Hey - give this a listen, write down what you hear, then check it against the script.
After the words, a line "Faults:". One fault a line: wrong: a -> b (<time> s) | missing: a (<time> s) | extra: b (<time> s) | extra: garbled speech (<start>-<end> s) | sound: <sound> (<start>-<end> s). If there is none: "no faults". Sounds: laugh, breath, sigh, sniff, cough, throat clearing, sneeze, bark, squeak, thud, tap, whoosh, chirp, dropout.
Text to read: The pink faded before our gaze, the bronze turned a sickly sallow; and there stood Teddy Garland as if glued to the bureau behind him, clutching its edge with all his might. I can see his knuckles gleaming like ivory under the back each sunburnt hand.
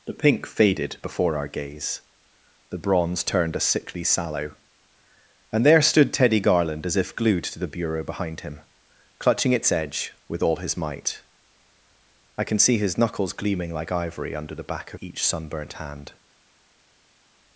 The pink faded before our gaze, the bronze turned a sickly sallow; and there stood Teddy Garland as if glued to the bureau behind him, clutching its edge with all his might. I can see his knuckles gleaming like ivory under the back each sunburnt hand.
Faults:
no faults